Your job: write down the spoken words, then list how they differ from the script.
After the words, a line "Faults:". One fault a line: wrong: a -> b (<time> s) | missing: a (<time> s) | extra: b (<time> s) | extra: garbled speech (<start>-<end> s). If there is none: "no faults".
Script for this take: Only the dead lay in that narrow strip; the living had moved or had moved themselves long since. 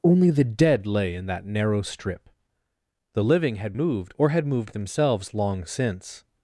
Only the dead lay in that narrow strip; the living had moved or had moved themselves long since.
Faults:
no faults